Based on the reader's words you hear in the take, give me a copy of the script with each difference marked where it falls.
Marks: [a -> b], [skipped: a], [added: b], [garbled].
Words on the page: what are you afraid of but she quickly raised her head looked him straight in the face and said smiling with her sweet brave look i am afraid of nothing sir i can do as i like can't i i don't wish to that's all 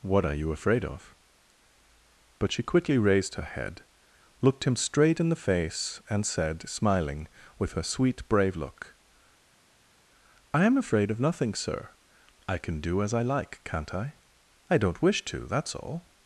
what are you afraid of but she quickly raised her head looked him straight in the face and said smiling with her sweet brave look i am afraid of nothing sir i can do as i like can't i i don't wish to that's all